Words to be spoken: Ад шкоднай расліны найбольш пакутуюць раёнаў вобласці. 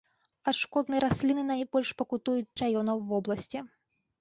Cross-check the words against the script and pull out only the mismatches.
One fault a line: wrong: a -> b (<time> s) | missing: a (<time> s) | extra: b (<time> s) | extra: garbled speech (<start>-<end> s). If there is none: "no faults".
no faults